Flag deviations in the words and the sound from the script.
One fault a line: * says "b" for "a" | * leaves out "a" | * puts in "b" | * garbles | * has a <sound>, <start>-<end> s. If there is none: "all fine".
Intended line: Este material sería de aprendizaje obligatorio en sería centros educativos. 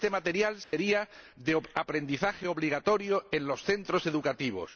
* has a dropout, 0.6-0.7 s
* says "los" for "sería"